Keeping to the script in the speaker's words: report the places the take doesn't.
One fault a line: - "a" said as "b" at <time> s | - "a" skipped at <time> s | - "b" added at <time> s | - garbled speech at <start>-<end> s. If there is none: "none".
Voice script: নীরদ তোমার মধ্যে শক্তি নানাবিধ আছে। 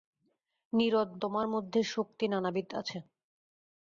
none